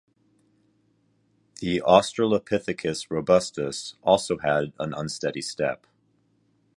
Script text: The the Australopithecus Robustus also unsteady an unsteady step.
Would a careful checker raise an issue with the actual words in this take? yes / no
yes